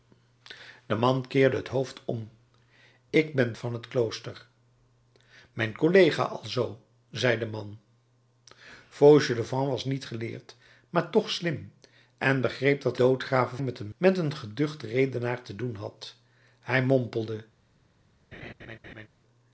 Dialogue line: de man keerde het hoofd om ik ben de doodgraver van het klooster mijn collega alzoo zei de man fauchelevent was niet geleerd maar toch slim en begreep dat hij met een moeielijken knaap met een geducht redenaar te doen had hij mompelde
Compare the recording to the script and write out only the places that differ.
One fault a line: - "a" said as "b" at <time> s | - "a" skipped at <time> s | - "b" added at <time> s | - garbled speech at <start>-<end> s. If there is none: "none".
- "de doodgraver" skipped at 3.5 s
- "hij" said as "doodgraver" at 12.9 s
- "moeielijken knaap" skipped at 13.9 s